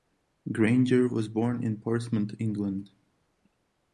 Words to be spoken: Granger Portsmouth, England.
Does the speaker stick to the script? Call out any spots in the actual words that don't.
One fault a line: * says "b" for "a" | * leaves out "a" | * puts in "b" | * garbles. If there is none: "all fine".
* puts in "was born in"